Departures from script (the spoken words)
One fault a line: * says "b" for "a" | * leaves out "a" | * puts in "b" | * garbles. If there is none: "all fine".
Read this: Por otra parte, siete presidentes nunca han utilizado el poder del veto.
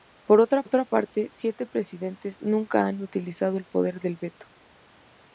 * puts in "otra"